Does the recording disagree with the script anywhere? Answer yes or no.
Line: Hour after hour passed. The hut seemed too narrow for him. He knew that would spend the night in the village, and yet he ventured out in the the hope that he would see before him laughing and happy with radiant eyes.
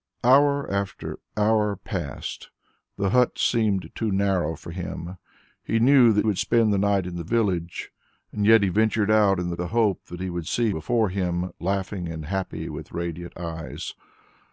no